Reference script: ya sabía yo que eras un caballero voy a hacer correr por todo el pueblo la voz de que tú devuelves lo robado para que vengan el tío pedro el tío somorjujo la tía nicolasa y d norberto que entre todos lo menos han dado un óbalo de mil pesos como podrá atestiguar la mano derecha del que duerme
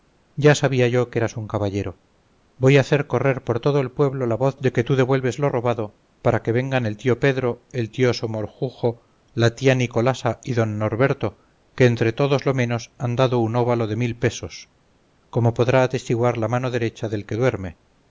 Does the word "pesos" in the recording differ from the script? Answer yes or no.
no